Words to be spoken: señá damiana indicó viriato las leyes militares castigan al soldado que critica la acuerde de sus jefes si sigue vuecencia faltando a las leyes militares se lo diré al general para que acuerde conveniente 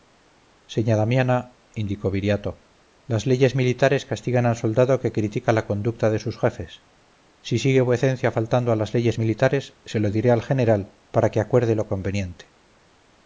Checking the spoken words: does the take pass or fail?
fail